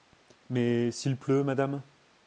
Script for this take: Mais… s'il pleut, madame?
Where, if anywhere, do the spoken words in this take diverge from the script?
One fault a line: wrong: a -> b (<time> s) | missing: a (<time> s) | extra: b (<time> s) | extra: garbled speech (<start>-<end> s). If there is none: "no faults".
no faults